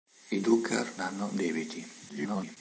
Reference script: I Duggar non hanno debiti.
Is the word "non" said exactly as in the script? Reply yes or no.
no